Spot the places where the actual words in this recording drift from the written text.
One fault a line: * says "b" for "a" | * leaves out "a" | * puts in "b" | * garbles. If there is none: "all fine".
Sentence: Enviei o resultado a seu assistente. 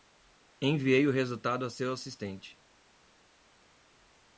all fine